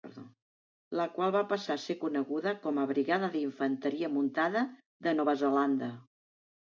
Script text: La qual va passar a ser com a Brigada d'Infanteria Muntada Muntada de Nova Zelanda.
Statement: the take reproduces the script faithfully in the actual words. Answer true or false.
false